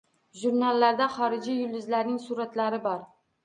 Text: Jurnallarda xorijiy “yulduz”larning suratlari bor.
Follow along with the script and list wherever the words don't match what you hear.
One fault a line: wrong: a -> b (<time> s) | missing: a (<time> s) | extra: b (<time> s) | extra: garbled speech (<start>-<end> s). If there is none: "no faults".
no faults